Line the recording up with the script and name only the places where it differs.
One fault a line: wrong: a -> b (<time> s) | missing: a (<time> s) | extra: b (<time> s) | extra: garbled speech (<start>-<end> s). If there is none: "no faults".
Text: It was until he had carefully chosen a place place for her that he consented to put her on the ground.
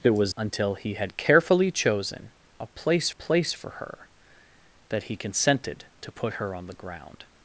no faults